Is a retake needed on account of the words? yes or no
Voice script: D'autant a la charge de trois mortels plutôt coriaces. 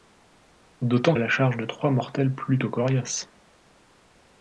no